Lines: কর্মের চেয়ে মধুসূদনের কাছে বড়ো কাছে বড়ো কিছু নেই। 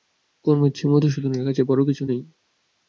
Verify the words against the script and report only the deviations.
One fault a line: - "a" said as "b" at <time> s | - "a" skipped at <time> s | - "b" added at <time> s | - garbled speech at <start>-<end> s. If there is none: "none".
- "কাছে বড়ো" skipped at 1.8 s